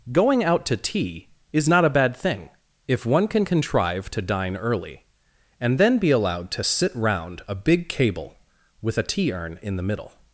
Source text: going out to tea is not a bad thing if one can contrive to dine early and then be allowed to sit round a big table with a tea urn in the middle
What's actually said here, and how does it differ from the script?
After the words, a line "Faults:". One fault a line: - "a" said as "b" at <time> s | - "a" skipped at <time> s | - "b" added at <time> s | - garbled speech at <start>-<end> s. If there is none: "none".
going out to tea is not a bad thing if one can contrive to dine early and then be allowed to sit round a big cable with a tea urn in the middle
Faults:
- "table" said as "cable" at 7.9 s